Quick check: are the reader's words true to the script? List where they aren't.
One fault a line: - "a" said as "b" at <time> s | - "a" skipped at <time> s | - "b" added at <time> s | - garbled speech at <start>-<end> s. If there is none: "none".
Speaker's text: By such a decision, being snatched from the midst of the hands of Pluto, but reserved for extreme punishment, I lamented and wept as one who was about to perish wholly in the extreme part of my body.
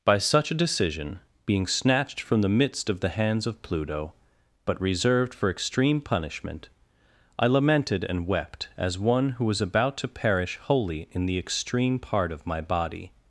none